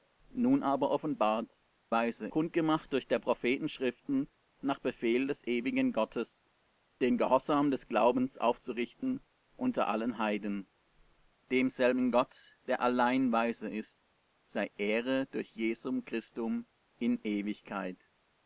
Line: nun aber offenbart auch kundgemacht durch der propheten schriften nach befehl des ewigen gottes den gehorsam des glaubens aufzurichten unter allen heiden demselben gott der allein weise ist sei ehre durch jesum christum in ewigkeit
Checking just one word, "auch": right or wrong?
wrong